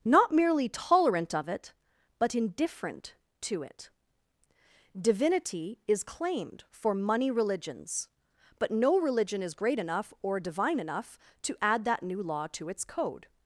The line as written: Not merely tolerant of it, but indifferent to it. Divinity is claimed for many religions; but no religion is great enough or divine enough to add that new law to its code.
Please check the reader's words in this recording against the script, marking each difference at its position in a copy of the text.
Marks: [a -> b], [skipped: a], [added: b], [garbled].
Not merely tolerant of it, but indifferent to it. Divinity is claimed for [many -> money] religions; but no religion is great enough or divine enough to add that new law to its code.